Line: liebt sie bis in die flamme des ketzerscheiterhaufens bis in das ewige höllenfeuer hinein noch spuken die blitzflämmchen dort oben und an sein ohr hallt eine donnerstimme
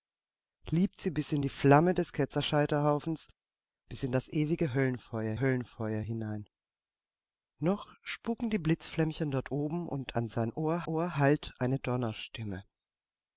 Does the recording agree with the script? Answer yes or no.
no